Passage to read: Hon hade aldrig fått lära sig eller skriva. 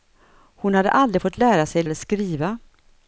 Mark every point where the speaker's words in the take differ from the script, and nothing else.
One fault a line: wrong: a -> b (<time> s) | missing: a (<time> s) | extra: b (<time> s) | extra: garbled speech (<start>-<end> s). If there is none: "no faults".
no faults